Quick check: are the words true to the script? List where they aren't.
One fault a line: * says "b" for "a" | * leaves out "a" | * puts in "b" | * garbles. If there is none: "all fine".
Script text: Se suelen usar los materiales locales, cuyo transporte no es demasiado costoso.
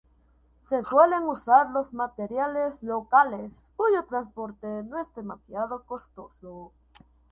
all fine